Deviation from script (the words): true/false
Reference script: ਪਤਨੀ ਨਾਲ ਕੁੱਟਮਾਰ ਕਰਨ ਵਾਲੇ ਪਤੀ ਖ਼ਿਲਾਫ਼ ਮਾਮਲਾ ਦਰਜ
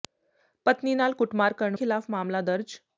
true